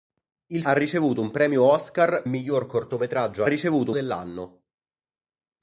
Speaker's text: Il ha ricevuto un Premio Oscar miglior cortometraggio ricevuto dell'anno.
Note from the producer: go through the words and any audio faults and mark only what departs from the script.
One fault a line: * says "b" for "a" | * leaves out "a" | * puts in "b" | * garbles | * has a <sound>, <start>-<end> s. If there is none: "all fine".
all fine